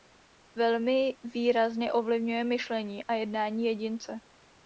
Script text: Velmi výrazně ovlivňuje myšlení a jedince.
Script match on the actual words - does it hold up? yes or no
no